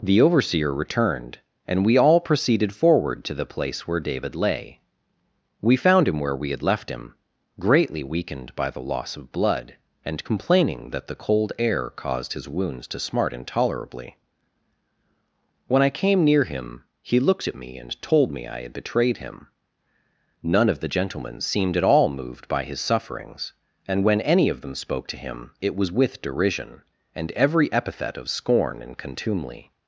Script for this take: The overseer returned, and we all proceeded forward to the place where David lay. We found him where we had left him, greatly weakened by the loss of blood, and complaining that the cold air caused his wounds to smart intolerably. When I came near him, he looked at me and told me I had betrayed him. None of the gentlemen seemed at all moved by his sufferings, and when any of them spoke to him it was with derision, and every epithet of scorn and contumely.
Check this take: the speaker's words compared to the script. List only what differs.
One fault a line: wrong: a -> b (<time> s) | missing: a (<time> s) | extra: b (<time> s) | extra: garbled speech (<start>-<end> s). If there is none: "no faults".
no faults